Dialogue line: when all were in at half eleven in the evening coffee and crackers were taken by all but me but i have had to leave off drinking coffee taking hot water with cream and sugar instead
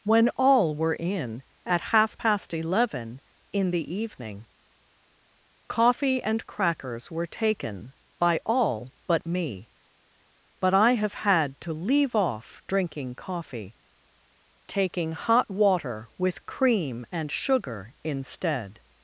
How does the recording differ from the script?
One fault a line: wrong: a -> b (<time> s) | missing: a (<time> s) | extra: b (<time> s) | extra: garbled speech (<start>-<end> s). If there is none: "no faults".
extra: past (2.1 s)